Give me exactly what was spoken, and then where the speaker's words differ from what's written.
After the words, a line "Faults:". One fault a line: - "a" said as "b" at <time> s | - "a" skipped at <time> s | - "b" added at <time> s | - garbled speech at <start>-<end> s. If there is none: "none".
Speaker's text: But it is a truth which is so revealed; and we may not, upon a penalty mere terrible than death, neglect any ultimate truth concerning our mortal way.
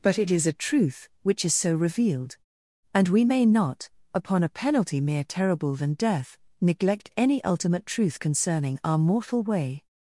But it is a truth which is so revealed; and we may not, upon a penalty mere terrible than death, neglect any ultimate truth concerning our mortal way.
Faults:
none